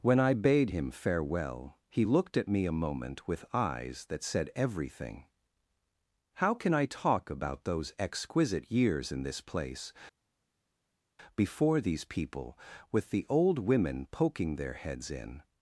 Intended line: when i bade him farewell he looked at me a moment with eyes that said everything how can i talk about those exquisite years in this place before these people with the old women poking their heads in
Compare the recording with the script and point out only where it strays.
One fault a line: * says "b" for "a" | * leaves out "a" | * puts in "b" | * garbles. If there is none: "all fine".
all fine